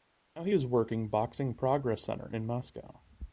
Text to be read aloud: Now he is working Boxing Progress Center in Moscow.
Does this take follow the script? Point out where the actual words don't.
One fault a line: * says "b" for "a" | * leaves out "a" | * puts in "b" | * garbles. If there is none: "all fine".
all fine